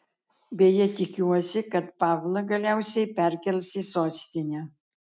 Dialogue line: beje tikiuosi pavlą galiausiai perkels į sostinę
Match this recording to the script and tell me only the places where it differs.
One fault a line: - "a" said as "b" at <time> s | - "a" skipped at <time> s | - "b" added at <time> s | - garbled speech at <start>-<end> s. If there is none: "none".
- "kad" added at 1.8 s